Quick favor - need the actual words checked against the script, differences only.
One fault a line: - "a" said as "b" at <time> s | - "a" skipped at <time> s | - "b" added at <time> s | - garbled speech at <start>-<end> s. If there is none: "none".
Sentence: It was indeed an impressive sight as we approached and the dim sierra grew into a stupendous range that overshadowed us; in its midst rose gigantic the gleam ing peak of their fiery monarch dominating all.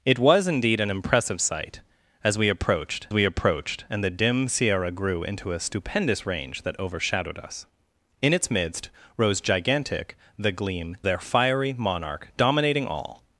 - "we approached" added at 3.1 s
- "ing peak of" skipped at 11.0 s